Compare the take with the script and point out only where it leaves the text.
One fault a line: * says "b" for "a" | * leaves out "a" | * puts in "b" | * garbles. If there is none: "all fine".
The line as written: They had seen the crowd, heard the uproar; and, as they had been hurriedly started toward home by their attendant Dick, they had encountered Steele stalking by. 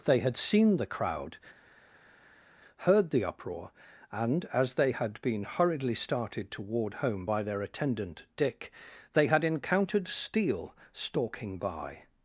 all fine